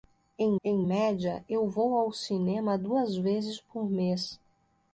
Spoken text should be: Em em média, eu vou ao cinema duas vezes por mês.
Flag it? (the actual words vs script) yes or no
no